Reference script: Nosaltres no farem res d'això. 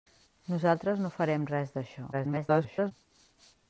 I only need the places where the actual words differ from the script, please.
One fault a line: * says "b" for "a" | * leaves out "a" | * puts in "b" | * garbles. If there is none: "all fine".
* garbles